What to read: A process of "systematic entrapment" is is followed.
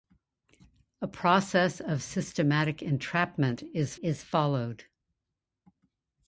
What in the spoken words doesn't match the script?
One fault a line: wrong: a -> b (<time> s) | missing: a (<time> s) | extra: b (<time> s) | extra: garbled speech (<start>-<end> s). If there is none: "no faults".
no faults